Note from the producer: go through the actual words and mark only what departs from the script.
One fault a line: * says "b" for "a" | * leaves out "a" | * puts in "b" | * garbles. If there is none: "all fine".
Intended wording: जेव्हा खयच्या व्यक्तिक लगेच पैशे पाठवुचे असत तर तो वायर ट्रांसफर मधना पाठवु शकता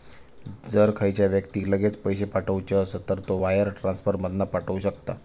* says "जर" for "जेव्हा"